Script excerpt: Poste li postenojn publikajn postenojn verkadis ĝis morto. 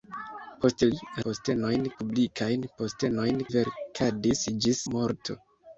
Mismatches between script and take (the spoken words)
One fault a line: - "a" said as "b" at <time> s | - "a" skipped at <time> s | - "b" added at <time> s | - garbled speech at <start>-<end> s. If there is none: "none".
none